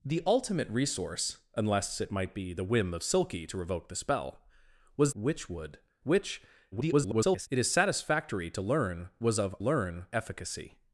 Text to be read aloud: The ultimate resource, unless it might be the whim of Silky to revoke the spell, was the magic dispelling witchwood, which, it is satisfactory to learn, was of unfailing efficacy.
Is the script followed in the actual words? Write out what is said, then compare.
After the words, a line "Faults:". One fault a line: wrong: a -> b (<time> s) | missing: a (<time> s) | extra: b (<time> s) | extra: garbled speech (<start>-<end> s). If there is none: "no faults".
The ultimate resource, unless it might be the whim of Silky to revoke the spell, was witchwood, which, [garbled] it is satisfactory to learn, was of learn efficacy.
Faults:
missing: the magic dispelling (5.1 s)
extra: garbled speech (6.7-7.5 s)
wrong: unfailing -> learn (9.6 s)